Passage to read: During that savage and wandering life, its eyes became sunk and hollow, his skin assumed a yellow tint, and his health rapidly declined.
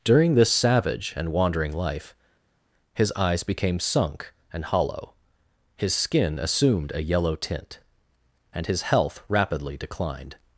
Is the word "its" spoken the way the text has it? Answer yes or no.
no